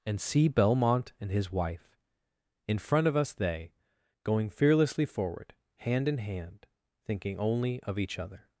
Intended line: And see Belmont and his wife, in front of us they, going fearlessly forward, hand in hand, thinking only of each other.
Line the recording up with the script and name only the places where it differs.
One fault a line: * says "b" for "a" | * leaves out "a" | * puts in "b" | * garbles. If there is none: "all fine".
all fine